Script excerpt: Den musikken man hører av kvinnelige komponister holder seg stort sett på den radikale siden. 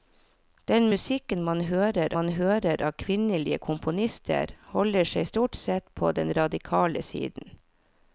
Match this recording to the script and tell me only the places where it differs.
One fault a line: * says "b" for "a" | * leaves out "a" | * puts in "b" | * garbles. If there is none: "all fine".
* puts in "man hører"